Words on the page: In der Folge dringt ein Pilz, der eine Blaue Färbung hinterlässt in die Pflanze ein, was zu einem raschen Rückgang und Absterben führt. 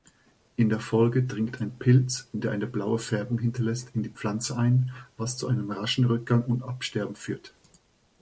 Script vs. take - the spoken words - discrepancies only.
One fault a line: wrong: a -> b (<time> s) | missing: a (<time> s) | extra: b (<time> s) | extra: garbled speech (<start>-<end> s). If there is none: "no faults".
no faults